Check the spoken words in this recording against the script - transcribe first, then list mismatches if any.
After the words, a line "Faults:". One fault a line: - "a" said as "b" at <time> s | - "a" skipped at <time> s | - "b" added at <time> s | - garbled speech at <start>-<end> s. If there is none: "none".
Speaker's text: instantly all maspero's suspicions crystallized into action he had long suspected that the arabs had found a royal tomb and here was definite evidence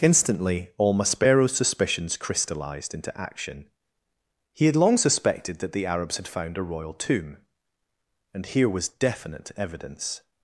instantly all maspero's suspicions crystallized into action he had long suspected that the arabs had found a royal tomb and here was definite evidence
Faults:
none